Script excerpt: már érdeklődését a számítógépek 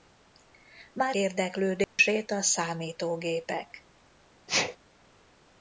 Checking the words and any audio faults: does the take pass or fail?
fail